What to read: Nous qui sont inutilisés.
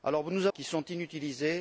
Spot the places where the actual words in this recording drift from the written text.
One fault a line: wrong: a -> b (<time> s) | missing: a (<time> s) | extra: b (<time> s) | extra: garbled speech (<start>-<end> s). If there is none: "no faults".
no faults